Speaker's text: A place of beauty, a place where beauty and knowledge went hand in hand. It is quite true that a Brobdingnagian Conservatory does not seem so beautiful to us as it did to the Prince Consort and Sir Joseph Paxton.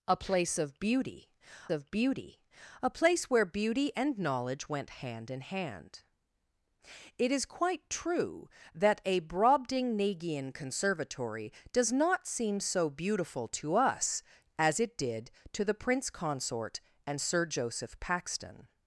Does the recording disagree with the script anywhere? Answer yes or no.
yes